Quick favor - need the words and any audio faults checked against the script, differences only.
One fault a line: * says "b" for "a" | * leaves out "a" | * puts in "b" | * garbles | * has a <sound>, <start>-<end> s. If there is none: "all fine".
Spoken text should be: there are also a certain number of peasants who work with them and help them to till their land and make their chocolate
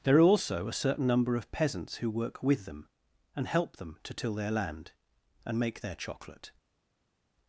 all fine